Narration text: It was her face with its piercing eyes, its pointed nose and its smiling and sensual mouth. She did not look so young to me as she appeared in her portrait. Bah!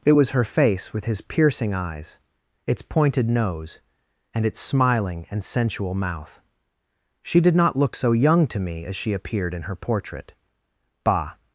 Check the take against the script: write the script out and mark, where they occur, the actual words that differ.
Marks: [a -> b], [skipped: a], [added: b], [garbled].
It was her face with [its -> his] piercing eyes, its pointed nose and its smiling and sensual mouth. She did not look so young to me as she appeared in her portrait. Bah!